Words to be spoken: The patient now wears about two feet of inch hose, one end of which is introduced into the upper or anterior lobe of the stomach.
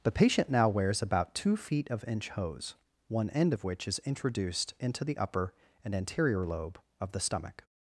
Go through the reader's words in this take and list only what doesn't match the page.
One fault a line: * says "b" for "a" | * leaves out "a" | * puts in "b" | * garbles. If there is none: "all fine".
* says "and" for "or"